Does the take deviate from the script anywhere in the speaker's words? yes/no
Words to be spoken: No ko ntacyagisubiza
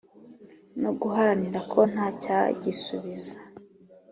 yes